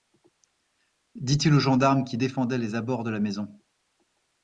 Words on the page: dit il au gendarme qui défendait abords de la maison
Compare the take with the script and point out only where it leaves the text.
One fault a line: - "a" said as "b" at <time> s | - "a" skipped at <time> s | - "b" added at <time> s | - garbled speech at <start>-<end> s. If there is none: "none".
- "les" added at 2.6 s